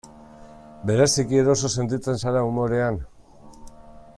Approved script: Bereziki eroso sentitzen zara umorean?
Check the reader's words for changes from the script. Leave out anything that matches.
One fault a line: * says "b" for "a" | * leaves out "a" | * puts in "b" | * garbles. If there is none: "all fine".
all fine